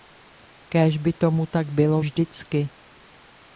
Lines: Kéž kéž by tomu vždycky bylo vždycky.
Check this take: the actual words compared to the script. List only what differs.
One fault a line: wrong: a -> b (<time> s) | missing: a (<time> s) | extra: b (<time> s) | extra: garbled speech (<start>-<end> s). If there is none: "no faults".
missing: kéž (1.0 s)
wrong: vždycky -> tak (1.4 s)